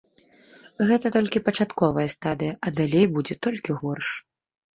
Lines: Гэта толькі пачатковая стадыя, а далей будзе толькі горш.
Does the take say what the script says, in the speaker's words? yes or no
yes